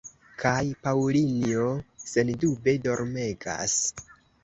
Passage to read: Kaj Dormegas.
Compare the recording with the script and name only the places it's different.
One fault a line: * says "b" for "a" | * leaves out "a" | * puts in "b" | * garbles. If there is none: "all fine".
* puts in "Paŭlinjo sendube"